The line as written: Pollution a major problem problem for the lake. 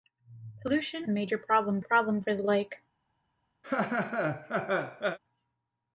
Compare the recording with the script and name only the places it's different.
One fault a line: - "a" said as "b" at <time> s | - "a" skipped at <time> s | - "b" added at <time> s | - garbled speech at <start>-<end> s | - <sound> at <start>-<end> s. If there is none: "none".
- laugh at 3.6-5.2 s